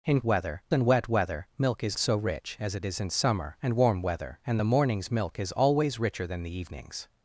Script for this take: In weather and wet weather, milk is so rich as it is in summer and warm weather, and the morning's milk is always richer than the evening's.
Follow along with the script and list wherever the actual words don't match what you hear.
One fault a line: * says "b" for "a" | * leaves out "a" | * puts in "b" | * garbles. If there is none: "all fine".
all fine